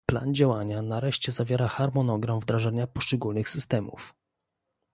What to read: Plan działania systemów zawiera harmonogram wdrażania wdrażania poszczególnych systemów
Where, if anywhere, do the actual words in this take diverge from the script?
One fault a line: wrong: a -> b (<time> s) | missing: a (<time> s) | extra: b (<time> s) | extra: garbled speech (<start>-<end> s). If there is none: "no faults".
wrong: systemów -> nareszcie (0.8 s)
missing: wdrażania (2.9 s)